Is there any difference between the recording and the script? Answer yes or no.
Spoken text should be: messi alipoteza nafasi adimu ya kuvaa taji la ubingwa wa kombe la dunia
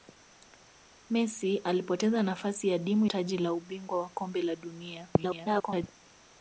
yes